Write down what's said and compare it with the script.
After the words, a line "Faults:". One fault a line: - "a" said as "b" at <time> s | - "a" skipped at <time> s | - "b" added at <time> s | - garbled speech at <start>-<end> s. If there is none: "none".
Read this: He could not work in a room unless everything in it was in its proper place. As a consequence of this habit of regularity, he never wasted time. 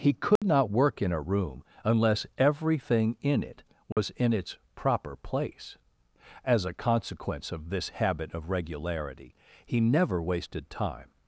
He could not work in a room unless everything in it was in its proper place. As a consequence of this habit of regularity, he never wasted time.
Faults:
none